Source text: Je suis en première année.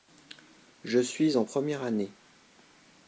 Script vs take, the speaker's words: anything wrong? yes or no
no